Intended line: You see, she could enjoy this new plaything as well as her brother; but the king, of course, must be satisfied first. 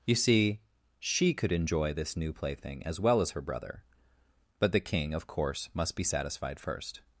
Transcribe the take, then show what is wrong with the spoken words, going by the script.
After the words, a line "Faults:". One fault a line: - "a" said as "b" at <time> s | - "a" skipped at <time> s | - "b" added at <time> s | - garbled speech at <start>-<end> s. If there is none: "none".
You see, she could enjoy this new plaything as well as her brother; but the king, of course, must be satisfied first.
Faults:
none